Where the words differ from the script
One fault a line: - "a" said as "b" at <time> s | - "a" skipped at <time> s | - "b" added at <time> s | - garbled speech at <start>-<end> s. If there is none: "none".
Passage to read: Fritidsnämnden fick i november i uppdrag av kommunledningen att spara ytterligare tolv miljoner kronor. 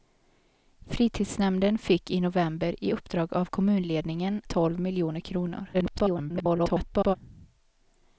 - "att spara ytterligare" skipped at 4.4 s
- garbled speech at 5.7-7.2 s